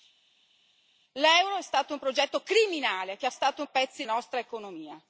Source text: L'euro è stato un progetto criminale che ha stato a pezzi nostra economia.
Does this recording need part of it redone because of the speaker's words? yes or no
no